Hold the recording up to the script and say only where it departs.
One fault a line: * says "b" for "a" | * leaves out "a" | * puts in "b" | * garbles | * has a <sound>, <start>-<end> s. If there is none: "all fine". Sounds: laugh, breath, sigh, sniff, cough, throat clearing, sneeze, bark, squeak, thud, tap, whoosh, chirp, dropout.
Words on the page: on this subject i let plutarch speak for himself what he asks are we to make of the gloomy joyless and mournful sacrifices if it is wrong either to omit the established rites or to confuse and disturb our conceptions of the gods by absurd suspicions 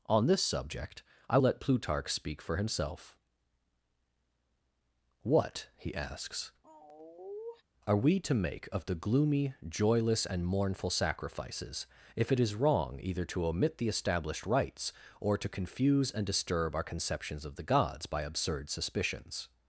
* has a sigh, 6.6-7.6 s